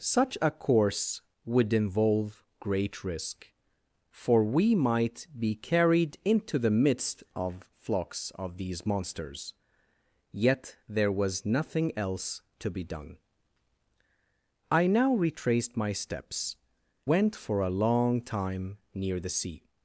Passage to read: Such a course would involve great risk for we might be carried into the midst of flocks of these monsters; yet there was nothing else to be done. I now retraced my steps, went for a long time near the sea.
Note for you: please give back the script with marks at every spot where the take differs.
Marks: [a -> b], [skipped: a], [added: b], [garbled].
Such a course would involve great risk for we might be carried into the midst of flocks of these monsters; yet there was nothing else to be done. I now retraced my steps, went for a long time near the sea.